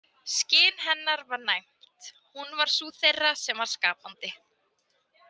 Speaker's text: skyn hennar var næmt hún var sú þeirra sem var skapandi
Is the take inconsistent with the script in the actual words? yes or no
no